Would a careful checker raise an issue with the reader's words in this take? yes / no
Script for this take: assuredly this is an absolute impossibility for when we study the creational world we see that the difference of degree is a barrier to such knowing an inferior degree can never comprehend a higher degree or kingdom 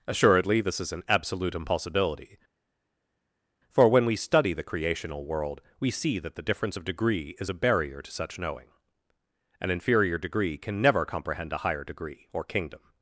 no